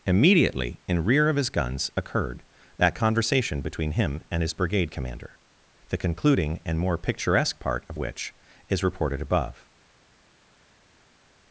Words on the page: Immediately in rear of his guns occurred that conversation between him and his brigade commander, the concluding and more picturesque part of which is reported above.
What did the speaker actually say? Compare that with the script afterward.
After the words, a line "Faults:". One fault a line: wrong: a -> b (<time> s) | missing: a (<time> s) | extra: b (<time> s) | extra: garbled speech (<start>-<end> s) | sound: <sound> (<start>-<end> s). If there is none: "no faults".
Immediately in rear of his guns occurred that conversation between him and his brigade commander, the concluding and more picturesque part of which is reported above.
Faults:
no faults